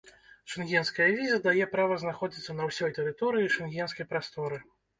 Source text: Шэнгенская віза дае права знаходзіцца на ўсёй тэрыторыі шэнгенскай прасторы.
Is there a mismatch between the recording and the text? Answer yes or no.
no